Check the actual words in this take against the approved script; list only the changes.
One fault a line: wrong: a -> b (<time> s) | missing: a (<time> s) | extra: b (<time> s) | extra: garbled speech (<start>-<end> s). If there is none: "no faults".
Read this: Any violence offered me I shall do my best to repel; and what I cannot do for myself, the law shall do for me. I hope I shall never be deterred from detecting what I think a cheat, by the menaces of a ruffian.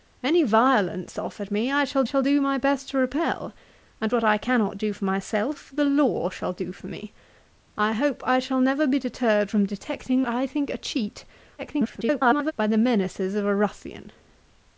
extra: shall (2.0 s)
missing: what (10.2 s)
extra: garbled speech (11.6-12.5 s)